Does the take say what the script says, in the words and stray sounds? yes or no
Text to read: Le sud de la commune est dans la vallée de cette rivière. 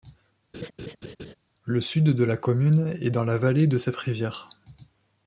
no